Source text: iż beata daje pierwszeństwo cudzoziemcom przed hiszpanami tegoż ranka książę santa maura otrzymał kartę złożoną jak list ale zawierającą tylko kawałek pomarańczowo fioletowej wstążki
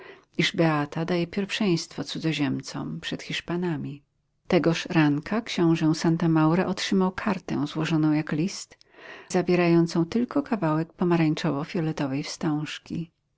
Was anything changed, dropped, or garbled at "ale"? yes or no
yes